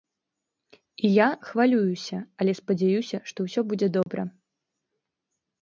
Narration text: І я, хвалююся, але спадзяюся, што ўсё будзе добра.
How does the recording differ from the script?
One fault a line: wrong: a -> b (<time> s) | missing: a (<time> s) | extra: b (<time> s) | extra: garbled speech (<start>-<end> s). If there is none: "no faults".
no faults